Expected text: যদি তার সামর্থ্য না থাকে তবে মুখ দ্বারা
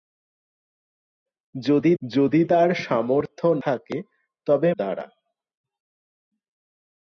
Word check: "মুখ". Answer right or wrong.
wrong